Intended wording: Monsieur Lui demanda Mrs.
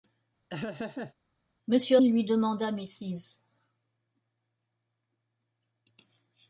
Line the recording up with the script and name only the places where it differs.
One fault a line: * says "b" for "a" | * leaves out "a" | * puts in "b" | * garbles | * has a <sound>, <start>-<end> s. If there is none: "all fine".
* has a laugh, 0.5-1.1 s